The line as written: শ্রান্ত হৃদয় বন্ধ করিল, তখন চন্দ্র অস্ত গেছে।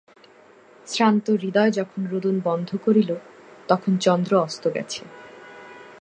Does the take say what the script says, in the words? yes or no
no